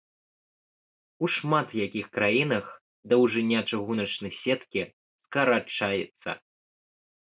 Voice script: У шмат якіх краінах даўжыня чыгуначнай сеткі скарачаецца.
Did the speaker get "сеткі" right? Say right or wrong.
right